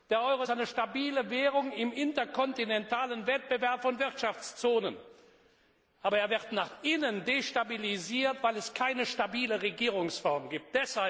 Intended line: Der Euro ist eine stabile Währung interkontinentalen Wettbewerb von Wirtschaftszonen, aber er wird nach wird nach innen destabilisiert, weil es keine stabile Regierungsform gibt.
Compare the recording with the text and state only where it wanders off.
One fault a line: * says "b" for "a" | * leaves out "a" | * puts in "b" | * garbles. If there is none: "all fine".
* puts in "im"
* leaves out "wird nach"